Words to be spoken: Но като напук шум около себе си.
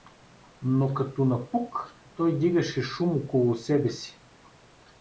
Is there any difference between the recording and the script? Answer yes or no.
yes